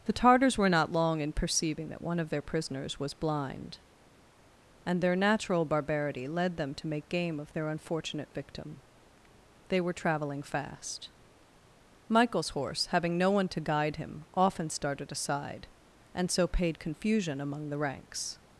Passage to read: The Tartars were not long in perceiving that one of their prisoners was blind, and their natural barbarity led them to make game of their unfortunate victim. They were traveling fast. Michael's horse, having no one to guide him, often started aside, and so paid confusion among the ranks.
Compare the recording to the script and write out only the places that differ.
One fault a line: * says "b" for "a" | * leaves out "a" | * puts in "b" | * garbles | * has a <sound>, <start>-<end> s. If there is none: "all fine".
all fine